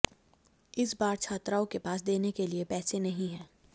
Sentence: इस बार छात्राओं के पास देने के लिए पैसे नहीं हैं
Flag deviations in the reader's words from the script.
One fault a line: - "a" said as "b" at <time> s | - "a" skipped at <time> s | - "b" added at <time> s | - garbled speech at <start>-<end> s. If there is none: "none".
none